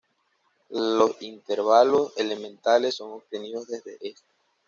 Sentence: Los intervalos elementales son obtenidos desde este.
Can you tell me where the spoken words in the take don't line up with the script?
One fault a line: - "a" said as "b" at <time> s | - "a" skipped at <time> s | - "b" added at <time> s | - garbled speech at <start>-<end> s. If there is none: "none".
none